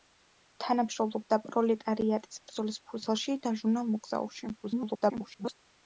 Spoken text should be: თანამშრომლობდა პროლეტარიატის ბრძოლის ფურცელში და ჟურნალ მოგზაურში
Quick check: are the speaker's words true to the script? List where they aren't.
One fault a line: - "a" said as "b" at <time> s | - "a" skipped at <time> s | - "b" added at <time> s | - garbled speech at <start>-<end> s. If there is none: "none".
- garbled speech at 4.6-5.5 s